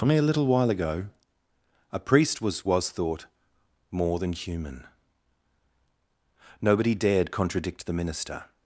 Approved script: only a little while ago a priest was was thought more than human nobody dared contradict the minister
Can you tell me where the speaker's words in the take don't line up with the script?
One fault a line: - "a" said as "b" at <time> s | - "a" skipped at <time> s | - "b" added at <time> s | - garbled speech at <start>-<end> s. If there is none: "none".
none